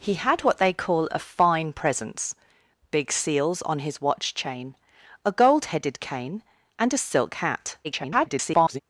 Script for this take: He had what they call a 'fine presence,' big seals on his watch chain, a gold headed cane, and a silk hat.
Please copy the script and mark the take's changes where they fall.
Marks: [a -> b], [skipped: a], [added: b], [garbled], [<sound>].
He had what they call a 'fine presence,' big seals on his watch chain, a gold headed cane, and a silk hat. [garbled]